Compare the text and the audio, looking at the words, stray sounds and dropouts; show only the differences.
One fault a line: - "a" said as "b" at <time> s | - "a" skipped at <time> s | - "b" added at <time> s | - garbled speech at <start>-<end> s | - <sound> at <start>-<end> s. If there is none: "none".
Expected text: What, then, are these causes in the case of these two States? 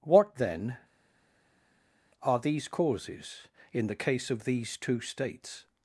none